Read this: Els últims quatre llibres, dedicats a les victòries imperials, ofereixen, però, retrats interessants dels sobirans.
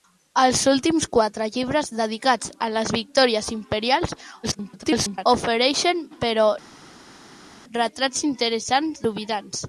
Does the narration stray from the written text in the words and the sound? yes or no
yes